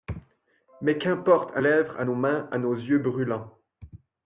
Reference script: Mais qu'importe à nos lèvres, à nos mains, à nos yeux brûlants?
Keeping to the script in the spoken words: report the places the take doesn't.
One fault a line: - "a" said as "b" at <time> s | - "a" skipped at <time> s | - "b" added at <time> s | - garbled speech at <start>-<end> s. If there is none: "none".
- "nos" skipped at 1.6 s